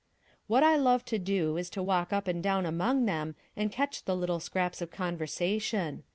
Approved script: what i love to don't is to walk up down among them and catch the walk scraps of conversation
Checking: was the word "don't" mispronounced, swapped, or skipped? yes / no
yes